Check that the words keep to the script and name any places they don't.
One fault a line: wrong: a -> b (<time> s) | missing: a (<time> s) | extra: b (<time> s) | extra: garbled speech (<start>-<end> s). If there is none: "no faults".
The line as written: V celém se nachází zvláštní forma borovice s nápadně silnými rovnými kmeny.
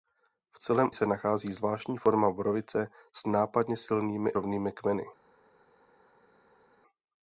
no faults